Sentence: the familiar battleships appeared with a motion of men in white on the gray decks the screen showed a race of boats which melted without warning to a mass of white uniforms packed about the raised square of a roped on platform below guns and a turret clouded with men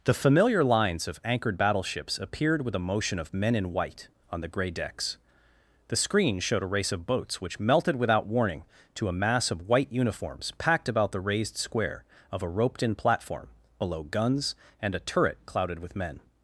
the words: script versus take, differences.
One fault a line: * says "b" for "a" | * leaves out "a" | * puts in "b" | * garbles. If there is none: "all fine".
* puts in "lines of anchored"
* says "in" for "on"